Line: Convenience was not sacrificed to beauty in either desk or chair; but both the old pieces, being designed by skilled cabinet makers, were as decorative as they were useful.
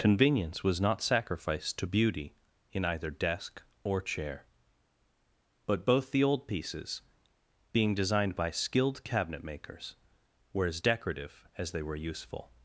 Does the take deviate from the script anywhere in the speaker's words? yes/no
no